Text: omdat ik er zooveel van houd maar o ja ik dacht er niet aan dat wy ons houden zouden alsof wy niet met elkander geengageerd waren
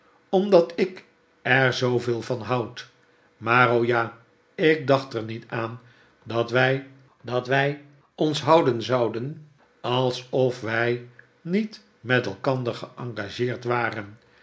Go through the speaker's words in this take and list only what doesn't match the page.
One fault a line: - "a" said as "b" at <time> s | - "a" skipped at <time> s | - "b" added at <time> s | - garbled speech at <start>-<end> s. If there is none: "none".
- "dat wy" added at 7.2 s